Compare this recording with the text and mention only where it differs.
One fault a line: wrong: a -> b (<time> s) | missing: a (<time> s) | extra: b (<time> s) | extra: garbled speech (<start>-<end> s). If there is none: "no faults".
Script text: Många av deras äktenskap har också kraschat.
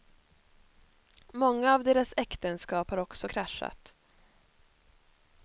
no faults